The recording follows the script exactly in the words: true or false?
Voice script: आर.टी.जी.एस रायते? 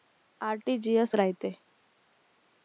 true